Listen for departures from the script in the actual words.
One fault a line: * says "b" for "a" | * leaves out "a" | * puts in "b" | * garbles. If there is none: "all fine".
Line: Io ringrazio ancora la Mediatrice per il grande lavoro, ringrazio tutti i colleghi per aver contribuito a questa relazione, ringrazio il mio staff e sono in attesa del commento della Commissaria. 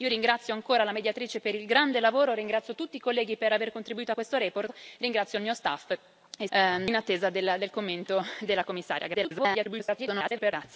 * leaves out "sono"
* garbles